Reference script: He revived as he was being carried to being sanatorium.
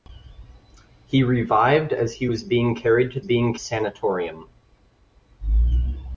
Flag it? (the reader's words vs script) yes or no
no